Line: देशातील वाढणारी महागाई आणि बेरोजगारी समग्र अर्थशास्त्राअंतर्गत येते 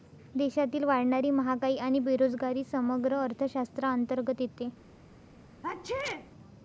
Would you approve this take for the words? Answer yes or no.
yes